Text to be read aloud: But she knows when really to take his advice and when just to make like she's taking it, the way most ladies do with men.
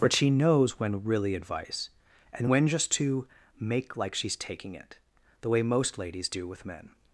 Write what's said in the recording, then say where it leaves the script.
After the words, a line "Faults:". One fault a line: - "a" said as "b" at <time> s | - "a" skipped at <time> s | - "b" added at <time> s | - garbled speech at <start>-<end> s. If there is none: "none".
But she knows when really advice and when just to make like she's taking it, the way most ladies do with men.
Faults:
- "to take his" skipped at 1.4 s